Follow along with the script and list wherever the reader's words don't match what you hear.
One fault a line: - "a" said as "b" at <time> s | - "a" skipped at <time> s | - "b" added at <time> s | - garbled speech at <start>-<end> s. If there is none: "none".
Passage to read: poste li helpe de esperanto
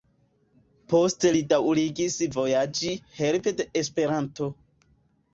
- "daŭrigis vojaĝi" added at 1.5 s